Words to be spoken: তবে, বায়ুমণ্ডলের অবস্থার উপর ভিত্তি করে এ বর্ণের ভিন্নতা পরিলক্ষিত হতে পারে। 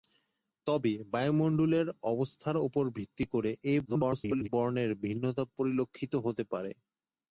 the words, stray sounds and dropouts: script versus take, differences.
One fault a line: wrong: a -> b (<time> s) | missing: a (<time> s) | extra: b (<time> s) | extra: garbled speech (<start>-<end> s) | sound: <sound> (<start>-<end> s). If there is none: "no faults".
extra: garbled speech (3.8-4.5 s)